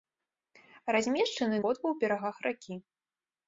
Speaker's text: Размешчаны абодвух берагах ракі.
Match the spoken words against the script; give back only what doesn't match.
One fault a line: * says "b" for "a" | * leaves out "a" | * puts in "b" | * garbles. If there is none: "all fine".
all fine